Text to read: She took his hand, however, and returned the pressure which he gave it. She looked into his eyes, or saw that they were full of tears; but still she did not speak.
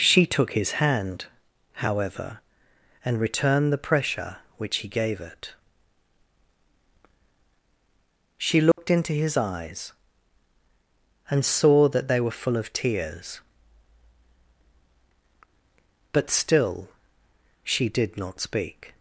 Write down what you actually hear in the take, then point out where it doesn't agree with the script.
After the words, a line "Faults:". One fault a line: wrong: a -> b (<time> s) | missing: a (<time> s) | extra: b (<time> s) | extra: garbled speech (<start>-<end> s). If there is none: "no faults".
She took his hand, however, and returned the pressure which he gave it. She looked into his eyes, and saw that they were full of tears; but still she did not speak.
Faults:
wrong: or -> and (11.3 s)